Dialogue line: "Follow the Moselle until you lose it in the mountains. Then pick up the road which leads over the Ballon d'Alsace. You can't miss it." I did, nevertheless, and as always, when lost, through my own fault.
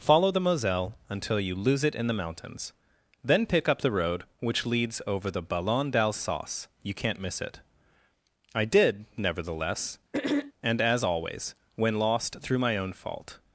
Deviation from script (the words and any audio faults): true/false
true